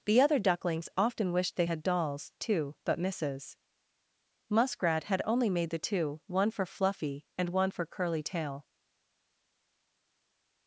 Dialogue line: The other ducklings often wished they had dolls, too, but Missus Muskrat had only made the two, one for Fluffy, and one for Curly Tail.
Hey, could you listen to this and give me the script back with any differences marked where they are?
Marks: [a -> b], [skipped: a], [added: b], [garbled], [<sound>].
The other ducklings often wished they had dolls, too, but Missus Muskrat had only made the two, one for Fluffy, and one for Curly Tail.